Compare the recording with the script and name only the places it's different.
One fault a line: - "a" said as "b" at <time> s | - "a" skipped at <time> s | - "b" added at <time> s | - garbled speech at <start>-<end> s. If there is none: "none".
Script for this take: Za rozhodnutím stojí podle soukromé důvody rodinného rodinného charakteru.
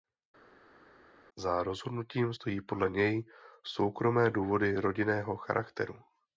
- "něj" added at 2.9 s
- "rodinného" skipped at 5.4 s